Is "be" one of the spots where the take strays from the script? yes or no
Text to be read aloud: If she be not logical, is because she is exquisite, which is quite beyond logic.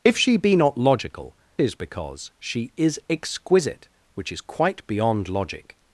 no